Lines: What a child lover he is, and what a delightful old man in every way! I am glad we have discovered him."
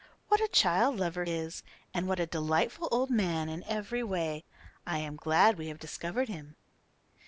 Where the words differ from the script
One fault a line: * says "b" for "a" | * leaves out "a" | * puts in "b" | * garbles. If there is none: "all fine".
* leaves out "he"